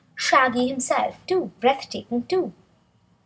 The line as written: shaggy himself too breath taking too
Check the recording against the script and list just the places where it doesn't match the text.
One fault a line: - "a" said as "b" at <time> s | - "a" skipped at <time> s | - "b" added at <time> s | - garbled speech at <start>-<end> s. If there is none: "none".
none